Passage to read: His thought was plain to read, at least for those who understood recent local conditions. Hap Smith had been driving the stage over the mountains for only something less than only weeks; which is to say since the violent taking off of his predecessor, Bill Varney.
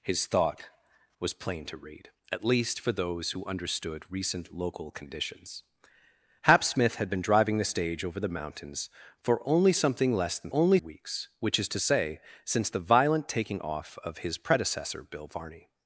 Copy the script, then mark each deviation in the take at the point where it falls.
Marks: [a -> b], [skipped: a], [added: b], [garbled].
His thought was plain to read, at least for those who understood recent local conditions. Hap Smith had been driving the stage over the mountains for only something less than only weeks; which is to say since the violent taking off of his predecessor, Bill Varney.